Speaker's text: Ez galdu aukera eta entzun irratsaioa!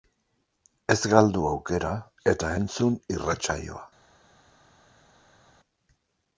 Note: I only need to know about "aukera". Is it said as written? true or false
true